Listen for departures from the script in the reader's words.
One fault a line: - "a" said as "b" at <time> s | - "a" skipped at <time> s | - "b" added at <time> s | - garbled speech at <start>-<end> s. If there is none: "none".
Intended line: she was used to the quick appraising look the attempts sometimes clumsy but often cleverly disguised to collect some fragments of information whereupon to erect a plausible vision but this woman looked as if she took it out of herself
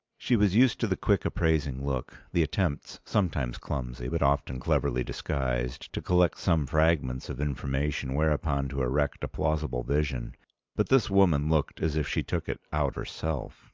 - "of" skipped at 12.9 s